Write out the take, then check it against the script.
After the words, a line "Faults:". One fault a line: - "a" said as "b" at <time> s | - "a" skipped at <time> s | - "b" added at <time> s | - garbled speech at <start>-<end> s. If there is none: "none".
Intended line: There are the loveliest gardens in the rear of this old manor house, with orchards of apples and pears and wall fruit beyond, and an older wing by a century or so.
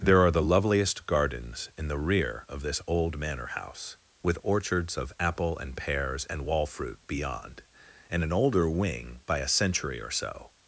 There are the loveliest gardens in the rear of this old manor house, with orchards of apple and pears and wall fruit beyond, and an older wing by a century or so.
Faults:
- "apples" said as "apple" at 5.2 s